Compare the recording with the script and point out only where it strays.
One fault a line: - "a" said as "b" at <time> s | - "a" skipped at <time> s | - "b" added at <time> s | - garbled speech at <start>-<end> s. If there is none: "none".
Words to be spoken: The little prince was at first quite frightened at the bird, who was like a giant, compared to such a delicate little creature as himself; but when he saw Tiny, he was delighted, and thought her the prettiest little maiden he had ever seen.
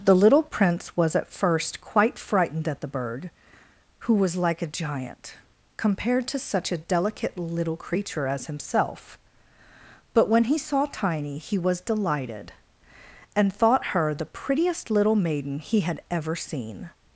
none